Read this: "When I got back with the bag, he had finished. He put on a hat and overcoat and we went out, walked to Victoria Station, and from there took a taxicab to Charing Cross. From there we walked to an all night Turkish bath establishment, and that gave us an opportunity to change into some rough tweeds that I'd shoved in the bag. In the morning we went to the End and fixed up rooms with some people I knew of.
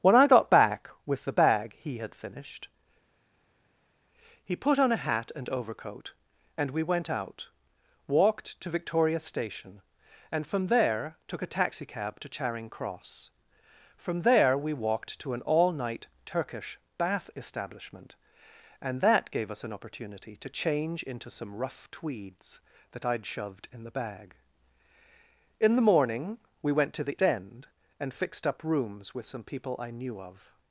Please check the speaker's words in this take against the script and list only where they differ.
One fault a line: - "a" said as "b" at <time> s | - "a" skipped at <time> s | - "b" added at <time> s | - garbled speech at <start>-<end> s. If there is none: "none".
none